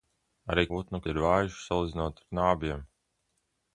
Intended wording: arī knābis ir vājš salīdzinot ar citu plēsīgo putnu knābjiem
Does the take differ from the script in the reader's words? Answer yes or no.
yes